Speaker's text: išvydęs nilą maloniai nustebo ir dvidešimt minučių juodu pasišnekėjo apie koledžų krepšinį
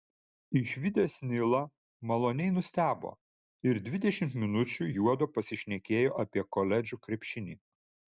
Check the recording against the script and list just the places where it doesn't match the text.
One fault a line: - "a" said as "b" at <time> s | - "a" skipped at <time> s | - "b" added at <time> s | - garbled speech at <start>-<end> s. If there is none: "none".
none